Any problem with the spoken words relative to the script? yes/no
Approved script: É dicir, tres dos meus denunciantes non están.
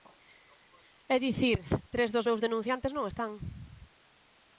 no